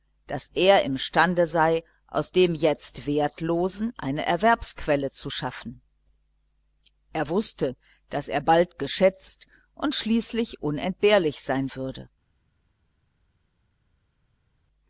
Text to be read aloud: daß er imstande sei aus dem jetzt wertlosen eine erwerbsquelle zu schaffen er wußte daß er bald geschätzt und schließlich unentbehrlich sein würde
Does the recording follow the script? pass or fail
pass